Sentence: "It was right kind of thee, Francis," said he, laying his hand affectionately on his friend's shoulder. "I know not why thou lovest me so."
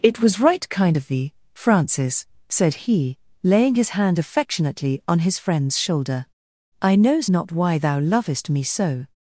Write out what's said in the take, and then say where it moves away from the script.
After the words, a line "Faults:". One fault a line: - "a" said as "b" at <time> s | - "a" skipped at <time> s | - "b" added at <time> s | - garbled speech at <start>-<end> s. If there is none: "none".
"It was right kind of thee, Francis," said he, laying his hand affectionately on his friend's shoulder. "I knows not why thou lovest me so."
Faults:
- "know" said as "knows" at 6.9 s